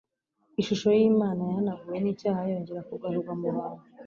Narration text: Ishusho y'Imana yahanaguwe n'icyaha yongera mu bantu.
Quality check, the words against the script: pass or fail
fail